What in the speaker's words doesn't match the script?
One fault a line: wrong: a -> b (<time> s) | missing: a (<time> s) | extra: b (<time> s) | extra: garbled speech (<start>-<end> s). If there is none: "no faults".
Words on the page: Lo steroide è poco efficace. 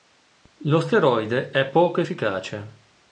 no faults